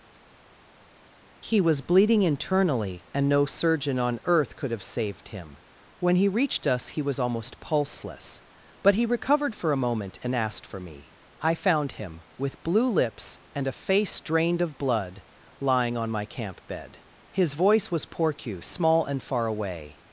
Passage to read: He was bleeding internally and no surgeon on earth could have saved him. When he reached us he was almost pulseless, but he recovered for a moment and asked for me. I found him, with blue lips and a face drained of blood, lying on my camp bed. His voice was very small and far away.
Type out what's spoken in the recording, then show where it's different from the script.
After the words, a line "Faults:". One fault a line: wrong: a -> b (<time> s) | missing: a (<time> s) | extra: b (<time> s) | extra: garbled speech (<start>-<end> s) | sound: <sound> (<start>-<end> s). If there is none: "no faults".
He was bleeding internally and no surgeon on earth could have saved him. When he reached us he was almost pulseless, but he recovered for a moment and asked for me. I found him, with blue lips and a face drained of blood, lying on my camp bed. His voice was porcu small and far away.
Faults:
wrong: very -> porcu (18.1 s)